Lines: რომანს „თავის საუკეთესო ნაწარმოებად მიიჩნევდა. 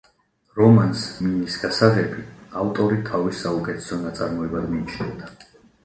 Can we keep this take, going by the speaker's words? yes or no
no